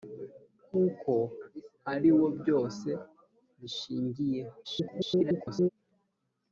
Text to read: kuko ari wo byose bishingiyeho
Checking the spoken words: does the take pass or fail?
fail